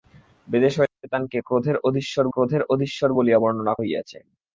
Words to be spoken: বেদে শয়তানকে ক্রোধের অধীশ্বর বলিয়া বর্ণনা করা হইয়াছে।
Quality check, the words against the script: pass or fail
fail